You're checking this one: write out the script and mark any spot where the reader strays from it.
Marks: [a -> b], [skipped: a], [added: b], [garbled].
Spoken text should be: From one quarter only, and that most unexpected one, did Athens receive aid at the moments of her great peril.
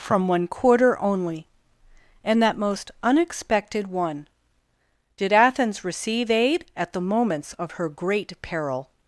From one quarter only, and that most unexpected one, did Athens receive aid at the moments of her great peril.